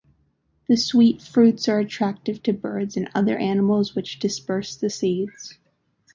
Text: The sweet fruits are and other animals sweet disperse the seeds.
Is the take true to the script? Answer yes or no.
no